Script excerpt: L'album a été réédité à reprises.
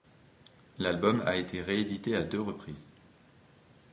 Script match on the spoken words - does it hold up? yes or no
no